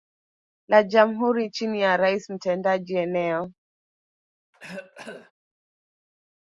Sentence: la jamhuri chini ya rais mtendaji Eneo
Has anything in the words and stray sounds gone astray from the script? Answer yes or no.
yes